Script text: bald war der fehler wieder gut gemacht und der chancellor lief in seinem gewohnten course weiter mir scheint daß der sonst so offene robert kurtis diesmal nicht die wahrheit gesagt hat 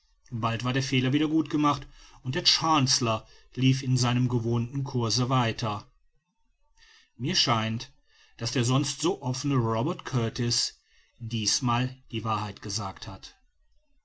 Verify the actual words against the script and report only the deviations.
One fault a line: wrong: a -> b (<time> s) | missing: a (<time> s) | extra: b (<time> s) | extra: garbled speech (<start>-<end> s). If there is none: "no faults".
missing: nicht (11.9 s)